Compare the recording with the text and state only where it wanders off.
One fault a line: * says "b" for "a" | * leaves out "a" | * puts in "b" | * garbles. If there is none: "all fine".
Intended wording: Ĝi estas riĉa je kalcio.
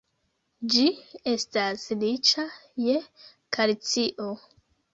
all fine